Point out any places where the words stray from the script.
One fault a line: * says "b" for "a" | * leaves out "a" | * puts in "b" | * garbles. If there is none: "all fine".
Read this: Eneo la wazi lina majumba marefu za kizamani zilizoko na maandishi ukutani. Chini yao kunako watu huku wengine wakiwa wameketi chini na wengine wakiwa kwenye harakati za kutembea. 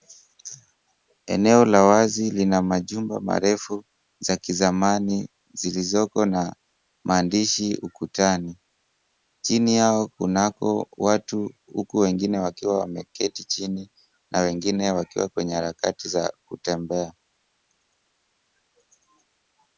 all fine